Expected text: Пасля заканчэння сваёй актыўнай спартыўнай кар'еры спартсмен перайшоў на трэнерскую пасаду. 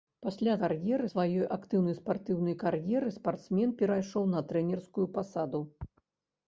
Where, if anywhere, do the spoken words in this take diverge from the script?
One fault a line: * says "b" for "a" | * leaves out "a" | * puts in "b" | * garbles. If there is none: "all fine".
* says "кар'еры" for "заканчэння"